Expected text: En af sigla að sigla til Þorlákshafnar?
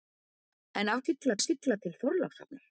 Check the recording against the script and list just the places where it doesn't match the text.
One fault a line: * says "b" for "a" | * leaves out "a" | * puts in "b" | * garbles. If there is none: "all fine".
all fine